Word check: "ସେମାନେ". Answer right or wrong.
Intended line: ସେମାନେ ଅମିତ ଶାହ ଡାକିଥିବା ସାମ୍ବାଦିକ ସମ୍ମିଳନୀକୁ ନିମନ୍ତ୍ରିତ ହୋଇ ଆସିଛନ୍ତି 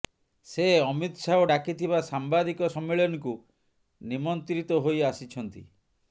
wrong